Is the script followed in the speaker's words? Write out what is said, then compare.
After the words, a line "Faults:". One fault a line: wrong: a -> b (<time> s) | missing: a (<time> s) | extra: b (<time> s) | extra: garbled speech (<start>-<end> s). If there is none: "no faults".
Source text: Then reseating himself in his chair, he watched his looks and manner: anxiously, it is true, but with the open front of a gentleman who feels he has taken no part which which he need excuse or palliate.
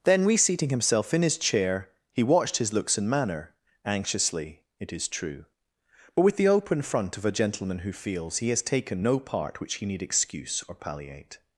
Then reseating himself in his chair, he watched his looks and manner: anxiously, it is true, but with the open front of a gentleman who feels he has taken no part which he need excuse or palliate.
Faults:
missing: which (9.7 s)